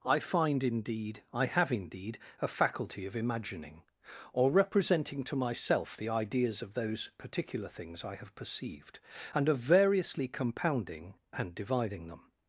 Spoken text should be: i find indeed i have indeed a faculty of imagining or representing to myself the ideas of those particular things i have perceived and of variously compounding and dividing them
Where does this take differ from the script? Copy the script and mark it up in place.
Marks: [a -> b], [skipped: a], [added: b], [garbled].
i find indeed i have indeed a faculty of imagining or representing to myself the ideas of those particular things i have perceived and of variously compounding and dividing them